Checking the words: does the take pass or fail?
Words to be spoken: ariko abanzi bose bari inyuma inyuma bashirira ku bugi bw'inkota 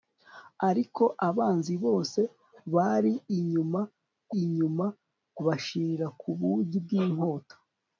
pass